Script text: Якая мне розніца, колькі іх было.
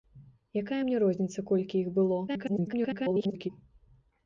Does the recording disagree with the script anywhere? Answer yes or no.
yes